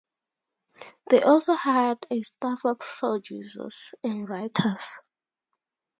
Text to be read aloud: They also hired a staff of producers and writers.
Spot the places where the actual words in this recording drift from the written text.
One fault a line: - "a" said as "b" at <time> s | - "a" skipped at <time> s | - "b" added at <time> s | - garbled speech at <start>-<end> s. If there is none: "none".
none